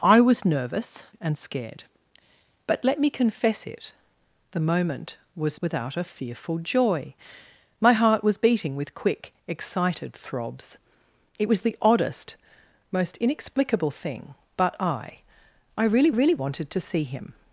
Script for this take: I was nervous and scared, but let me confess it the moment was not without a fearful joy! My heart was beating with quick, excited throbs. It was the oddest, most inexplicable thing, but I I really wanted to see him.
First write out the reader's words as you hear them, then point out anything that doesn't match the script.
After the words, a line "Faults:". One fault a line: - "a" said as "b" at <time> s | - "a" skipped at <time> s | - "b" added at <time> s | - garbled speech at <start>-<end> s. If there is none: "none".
I was nervous and scared, but let me confess it the moment was without a fearful joy! My heart was beating with quick, excited throbs. It was the oddest, most inexplicable thing, but I I really really wanted to see him.
Faults:
- "not" skipped at 5.6 s
- "really" added at 16.1 s